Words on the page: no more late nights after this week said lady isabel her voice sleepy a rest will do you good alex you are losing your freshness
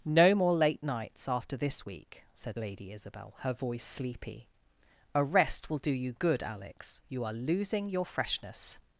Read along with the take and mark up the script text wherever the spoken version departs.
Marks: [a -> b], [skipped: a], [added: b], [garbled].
no more late nights after this week said lady isabel her voice sleepy a rest will do you good alex you are losing your freshness